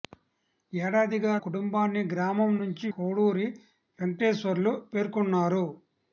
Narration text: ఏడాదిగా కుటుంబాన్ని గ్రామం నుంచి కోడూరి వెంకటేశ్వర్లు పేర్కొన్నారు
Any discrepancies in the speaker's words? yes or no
no